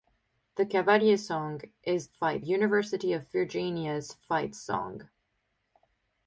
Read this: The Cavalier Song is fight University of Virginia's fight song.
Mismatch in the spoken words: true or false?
false